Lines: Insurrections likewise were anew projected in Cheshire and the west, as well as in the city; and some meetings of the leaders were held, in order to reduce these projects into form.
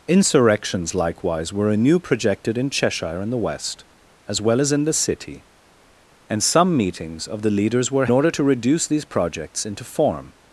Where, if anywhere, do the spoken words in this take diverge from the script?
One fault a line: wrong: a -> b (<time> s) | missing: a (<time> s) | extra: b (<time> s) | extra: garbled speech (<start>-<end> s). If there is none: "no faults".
missing: held in (8.1 s)